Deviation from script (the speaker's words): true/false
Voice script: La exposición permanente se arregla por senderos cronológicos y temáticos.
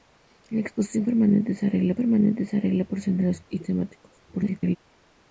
true